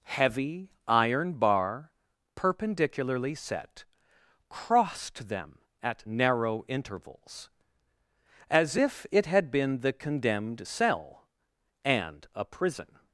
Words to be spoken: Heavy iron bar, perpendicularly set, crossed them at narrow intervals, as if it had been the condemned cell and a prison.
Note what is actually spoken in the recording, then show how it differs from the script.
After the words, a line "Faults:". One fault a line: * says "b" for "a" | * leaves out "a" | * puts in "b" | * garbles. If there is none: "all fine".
Heavy iron bar, perpendicularly set, crossed them at narrow intervals, as if it had been the condemned cell and a prison.
Faults:
all fine